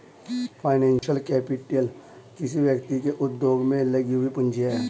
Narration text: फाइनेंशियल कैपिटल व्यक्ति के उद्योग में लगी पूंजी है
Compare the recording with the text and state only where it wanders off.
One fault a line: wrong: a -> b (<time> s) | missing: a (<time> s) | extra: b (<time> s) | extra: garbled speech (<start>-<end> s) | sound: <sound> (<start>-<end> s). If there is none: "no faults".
sound: dropout (1.0-1.0 s)
extra: किसी (2.4 s)
extra: हुई (4.1 s)